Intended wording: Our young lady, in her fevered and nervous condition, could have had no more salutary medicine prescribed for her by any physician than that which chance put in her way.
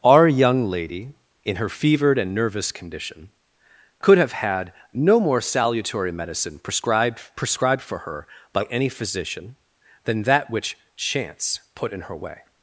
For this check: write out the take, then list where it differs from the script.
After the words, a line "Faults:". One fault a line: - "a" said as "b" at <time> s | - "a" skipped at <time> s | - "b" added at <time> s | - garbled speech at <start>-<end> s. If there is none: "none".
Our young lady, in her fevered and nervous condition, could have had no more salutary medicine prescribed prescribed for her by any physician than that which chance put in her way.
Faults:
- "prescribed" added at 7.3 s